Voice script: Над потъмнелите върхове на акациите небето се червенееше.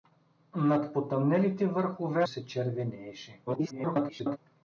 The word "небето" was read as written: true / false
false